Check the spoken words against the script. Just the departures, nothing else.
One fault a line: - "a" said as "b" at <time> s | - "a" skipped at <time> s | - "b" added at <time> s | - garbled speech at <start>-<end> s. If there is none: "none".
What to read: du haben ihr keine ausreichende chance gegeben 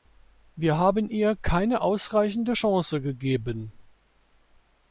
- "du" said as "wir" at 0.6 s